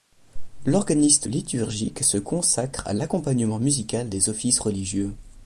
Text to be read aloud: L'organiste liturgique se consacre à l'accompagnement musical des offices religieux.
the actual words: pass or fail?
pass